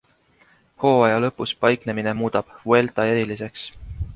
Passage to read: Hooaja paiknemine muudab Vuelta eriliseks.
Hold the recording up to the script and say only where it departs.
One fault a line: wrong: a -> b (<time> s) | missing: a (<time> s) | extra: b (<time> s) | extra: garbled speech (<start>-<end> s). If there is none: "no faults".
extra: lõpus (1.2 s)